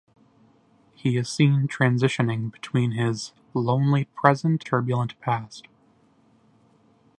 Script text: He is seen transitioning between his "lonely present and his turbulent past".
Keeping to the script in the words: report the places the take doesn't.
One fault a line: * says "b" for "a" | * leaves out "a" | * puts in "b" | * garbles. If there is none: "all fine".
* leaves out "and his"